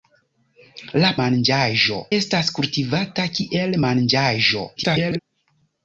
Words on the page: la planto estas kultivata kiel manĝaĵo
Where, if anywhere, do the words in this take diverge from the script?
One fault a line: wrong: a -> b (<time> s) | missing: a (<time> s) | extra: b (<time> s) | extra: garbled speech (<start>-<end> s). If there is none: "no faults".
wrong: planto -> manĝaĵo (1.2 s)
extra: garbled speech (4.8-5.2 s)